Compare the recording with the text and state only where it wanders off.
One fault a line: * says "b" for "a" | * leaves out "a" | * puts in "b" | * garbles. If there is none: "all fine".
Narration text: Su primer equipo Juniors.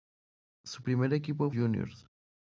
all fine